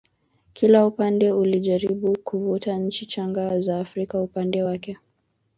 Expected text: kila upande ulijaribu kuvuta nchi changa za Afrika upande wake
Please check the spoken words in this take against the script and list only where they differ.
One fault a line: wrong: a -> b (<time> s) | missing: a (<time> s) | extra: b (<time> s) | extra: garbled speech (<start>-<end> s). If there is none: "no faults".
no faults